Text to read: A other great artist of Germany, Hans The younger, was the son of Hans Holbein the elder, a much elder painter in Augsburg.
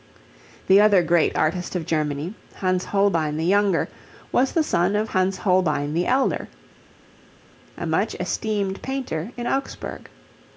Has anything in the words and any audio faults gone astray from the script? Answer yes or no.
yes